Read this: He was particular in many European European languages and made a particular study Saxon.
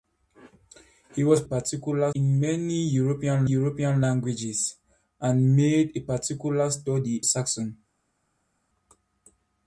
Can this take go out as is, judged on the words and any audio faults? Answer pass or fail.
pass